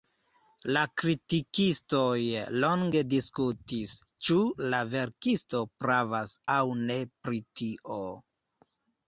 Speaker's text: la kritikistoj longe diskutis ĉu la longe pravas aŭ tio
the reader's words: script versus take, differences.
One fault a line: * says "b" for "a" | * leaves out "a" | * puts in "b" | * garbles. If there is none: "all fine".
* says "verkisto" for "longe"
* puts in "ne pri"